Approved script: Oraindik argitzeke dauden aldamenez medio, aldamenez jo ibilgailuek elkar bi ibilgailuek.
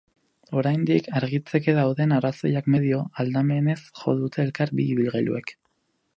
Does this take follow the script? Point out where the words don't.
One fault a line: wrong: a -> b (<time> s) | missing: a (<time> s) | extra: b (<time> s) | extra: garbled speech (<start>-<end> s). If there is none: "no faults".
wrong: aldamenez -> arrazoiak (2.2 s)
wrong: ibilgailuek -> dute (4.2 s)